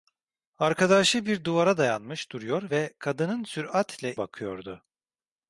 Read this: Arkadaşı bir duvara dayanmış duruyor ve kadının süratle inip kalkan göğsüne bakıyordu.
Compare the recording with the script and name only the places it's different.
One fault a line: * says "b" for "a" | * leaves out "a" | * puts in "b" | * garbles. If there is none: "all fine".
* leaves out "inip kalkan göğsüne"